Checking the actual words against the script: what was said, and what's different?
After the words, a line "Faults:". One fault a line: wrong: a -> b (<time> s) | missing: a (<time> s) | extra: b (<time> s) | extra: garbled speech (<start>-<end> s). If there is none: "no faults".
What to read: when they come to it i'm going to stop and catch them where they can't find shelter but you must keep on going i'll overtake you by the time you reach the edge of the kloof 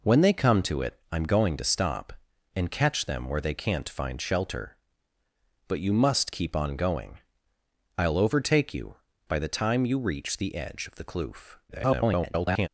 when they come to it i'm going to stop and catch them where they can't find shelter but you must keep on going i'll overtake you by the time you reach the edge of the kloof [garbled]
Faults:
extra: garbled speech (11.7-12.7 s)